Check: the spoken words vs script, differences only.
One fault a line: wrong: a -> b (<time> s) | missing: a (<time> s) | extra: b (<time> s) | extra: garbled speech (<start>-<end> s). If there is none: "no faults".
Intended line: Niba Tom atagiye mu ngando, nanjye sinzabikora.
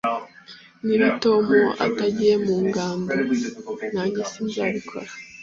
no faults